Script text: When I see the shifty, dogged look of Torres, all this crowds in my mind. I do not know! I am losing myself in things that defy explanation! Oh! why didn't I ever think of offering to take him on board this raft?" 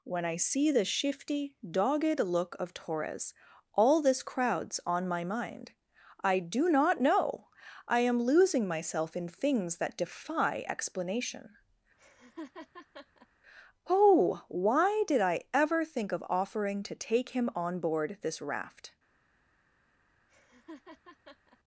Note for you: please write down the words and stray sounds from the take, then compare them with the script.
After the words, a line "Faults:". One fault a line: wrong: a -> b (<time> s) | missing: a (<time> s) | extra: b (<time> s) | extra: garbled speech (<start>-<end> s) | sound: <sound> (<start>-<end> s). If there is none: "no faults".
When I see the shifty, dogged look of Torres, all this crowds on my mind. I do not know! I am losing myself in things that defy explanation! Oh! why did I ever think of offering to take him on board this raft?"
Faults:
wrong: in -> on (4.8 s)
sound: laugh (12.0-13.3 s)
wrong: didn't -> did (15.1 s)
sound: laugh (20.3-21.6 s)